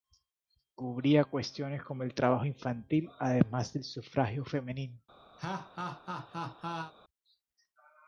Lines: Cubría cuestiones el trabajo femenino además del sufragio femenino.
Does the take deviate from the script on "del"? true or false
false